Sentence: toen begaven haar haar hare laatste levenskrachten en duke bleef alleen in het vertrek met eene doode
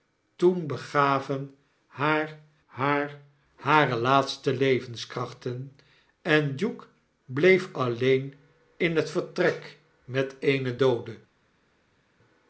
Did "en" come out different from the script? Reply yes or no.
no